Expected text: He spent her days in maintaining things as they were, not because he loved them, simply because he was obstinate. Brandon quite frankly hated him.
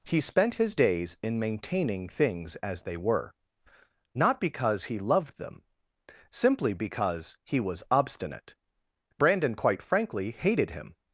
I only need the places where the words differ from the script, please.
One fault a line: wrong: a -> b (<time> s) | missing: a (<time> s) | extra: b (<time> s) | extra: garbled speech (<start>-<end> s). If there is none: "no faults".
wrong: her -> his (0.6 s)